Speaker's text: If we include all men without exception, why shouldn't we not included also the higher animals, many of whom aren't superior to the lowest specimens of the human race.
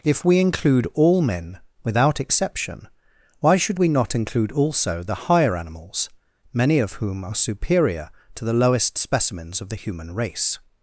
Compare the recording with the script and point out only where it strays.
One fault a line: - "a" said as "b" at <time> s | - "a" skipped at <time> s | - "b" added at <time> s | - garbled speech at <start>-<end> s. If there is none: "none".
- "shouldn't" said as "should" at 3.6 s
- "included" said as "include" at 4.1 s
- "aren't" said as "are" at 7.2 s